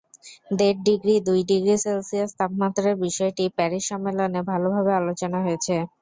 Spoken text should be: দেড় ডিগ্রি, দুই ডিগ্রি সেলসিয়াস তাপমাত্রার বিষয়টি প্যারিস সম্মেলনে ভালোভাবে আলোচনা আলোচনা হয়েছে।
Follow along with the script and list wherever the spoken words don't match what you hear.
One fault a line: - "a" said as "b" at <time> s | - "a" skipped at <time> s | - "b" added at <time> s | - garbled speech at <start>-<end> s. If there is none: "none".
- "আলোচনা" skipped at 5.4 s